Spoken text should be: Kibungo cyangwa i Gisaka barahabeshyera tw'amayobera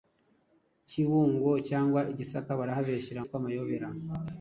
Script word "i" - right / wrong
right